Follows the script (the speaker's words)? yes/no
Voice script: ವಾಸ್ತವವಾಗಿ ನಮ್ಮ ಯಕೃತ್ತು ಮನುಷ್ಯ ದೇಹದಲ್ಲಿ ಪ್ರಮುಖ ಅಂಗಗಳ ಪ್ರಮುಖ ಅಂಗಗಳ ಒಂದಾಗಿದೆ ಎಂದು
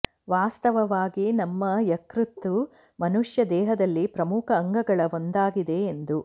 no